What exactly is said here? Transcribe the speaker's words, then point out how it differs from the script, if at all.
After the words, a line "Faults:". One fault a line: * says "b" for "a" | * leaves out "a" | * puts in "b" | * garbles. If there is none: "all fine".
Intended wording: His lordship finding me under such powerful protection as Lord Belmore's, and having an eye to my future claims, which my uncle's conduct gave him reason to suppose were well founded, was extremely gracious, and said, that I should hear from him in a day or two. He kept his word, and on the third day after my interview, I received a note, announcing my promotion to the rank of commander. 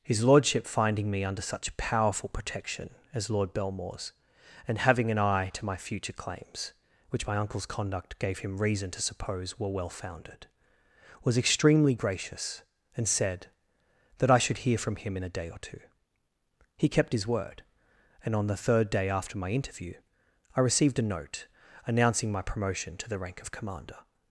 His lordship finding me under such powerful protection as Lord Belmore's, and having an eye to my future claims, which my uncle's conduct gave him reason to suppose were well founded, was extremely gracious, and said, that I should hear from him in a day or two. He kept his word, and on the third day after my interview, I received a note, announcing my promotion to the rank of commander.
Faults:
all fine